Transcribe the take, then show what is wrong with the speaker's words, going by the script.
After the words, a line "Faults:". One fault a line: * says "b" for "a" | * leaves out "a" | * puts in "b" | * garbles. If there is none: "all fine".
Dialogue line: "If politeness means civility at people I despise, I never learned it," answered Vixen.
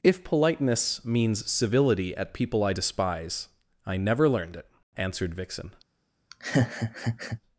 "If politeness means civility at people I despise, I never learned it," answered Vixen.
Faults:
all fine